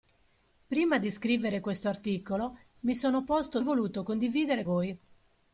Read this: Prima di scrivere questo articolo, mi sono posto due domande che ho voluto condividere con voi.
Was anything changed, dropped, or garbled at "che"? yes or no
yes